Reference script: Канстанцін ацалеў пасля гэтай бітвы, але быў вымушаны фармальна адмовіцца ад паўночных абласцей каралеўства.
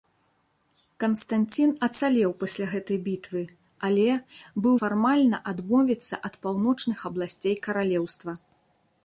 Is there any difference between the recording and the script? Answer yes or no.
yes